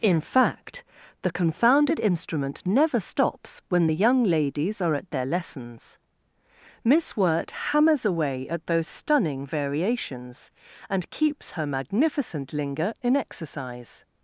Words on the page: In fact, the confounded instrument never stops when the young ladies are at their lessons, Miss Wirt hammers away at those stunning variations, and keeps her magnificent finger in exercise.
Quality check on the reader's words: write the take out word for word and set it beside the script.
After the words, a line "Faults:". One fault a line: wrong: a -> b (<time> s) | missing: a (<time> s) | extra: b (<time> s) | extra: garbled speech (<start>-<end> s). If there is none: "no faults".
In fact, the confounded instrument never stops when the young ladies are at their lessons, Miss Wirt hammers away at those stunning variations, and keeps her magnificent linger in exercise.
Faults:
wrong: finger -> linger (12.5 s)